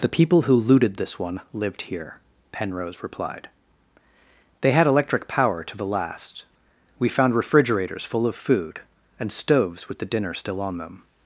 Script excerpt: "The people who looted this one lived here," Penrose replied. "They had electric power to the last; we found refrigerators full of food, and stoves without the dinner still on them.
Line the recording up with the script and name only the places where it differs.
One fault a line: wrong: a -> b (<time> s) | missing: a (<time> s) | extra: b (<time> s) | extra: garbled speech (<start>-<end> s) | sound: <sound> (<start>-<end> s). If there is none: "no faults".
wrong: without -> with (9.9 s)